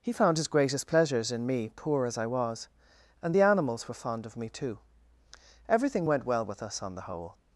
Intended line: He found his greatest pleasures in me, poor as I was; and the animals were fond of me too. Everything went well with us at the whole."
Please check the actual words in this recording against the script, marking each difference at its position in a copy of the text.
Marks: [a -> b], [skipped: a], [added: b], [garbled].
He found his greatest pleasures in me, poor as I was; and the animals were fond of me too. Everything went well with us [at -> on] the whole."